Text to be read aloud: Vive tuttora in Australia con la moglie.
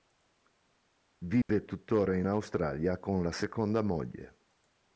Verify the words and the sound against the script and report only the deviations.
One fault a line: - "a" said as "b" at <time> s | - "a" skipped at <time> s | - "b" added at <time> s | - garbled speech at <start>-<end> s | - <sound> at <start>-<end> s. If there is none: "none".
- dropout at 1.4-1.5 s
- "seconda" added at 3.3 s